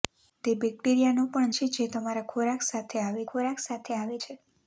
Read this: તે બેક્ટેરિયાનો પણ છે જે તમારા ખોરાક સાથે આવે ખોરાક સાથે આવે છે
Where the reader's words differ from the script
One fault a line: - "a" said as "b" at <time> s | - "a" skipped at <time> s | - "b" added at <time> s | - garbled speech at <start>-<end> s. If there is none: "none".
none